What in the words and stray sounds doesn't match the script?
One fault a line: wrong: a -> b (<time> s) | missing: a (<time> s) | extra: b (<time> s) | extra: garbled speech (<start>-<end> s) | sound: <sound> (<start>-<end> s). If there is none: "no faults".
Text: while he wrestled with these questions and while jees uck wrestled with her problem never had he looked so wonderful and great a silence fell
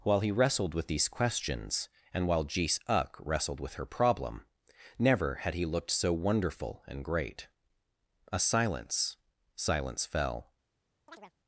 extra: silence (9.6 s)
sound: chirp (11.1-11.3 s)